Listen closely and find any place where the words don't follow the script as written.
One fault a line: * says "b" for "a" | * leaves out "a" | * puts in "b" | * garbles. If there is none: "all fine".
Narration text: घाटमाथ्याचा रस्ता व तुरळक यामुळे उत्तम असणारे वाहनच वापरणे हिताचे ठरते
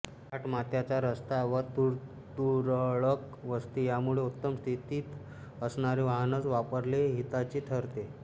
* puts in "वस्ती"
* puts in "स्थितीत"